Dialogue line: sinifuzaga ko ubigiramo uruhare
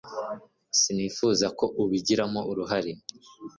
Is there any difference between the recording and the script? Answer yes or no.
no